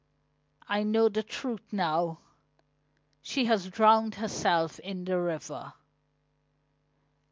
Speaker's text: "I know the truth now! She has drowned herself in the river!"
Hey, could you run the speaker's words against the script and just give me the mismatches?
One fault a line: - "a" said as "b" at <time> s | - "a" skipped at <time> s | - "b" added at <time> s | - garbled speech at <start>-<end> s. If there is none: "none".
none